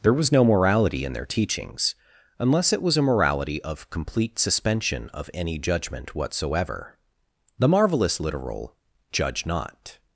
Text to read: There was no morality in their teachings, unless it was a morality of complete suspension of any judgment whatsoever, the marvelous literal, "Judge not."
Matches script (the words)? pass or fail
pass